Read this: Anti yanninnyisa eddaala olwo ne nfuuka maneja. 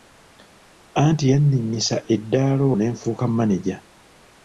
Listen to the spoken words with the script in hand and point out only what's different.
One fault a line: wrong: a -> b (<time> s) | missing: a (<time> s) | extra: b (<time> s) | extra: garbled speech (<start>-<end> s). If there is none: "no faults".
missing: olwo (2.6 s)